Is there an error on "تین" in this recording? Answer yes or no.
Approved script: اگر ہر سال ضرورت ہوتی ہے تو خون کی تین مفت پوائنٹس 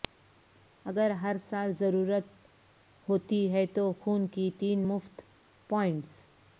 no